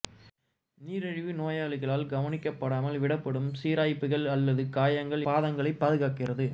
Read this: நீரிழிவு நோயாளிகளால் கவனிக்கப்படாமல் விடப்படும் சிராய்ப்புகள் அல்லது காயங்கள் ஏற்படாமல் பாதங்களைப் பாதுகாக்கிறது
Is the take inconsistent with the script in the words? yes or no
yes